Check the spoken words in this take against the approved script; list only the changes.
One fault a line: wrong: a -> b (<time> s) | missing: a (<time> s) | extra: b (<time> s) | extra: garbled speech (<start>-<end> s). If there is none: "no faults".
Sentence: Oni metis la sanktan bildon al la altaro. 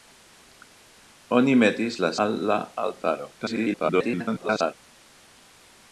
missing: sanktan bildon (2.1 s)
extra: garbled speech (3.4-4.7 s)